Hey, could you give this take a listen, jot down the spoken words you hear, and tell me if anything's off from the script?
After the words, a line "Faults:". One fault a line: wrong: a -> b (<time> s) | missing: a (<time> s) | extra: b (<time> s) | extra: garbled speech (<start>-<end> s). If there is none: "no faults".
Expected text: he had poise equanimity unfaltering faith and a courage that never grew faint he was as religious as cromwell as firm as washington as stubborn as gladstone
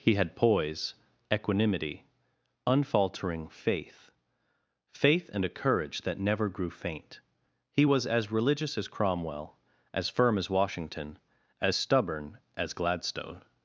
he had poise equanimity unfaltering faith faith and a courage that never grew faint he was as religious as cromwell as firm as washington as stubborn as gladstone
Faults:
extra: faith (4.9 s)